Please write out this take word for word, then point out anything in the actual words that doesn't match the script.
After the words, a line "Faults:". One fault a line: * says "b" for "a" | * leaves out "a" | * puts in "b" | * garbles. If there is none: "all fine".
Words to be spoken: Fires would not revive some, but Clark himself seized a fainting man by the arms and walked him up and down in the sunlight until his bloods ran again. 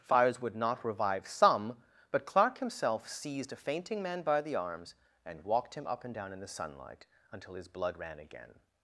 Fires would not revive some, but Clark himself seized a fainting man by the arms and walked him up and down in the sunlight until his blood ran again.
Faults:
* says "blood" for "bloods"